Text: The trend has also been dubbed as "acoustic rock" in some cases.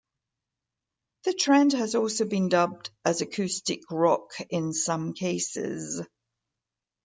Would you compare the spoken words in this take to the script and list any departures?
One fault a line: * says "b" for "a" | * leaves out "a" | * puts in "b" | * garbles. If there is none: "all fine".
all fine